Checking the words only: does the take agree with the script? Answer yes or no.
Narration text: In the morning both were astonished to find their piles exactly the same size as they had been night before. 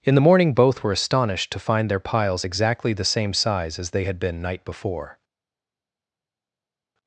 yes